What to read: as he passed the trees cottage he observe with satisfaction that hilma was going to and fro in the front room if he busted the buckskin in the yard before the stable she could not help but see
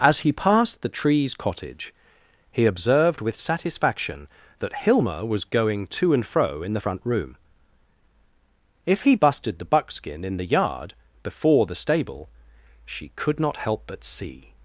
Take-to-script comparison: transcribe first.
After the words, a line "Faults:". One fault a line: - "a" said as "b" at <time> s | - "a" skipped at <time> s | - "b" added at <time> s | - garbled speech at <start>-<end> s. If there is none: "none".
as he passed the trees cottage he observed with satisfaction that hilma was going to and fro in the front room if he busted the buckskin in the yard before the stable she could not help but see
Faults:
- "observe" said as "observed" at 2.6 s